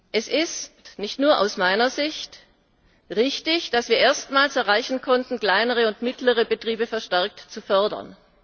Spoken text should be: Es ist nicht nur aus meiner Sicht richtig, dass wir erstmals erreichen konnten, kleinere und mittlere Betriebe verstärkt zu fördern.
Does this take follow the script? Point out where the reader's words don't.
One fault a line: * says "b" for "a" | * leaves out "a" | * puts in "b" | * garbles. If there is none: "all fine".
all fine